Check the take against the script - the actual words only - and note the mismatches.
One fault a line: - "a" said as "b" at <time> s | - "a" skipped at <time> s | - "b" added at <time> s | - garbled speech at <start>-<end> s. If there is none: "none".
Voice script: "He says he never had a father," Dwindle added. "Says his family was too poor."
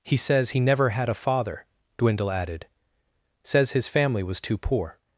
none